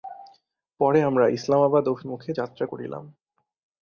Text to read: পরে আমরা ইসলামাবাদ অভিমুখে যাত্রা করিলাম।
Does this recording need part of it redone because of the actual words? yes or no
no